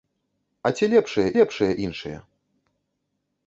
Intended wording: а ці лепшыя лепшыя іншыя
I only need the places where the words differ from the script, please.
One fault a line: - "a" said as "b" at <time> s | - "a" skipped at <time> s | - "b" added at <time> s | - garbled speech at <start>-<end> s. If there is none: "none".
none